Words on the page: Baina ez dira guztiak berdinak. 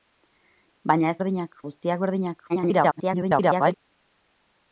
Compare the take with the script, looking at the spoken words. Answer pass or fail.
fail